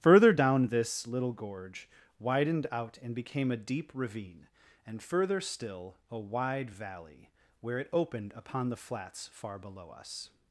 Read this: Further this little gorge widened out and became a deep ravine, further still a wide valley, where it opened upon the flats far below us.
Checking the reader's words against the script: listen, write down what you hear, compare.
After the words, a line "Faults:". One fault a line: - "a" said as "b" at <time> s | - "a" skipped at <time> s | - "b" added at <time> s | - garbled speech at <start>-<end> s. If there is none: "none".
Further down this little gorge widened out and became a deep ravine, and further still a wide valley, where it opened upon the flats far below us.
Faults:
- "down" added at 0.3 s
- "and" added at 4.9 s